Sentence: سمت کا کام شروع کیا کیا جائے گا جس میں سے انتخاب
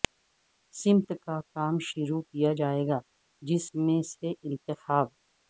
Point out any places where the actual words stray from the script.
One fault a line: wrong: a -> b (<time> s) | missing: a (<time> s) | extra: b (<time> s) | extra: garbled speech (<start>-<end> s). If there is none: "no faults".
missing: کیا (2.5 s)